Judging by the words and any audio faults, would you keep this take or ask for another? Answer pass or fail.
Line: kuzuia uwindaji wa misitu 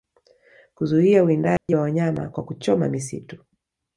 fail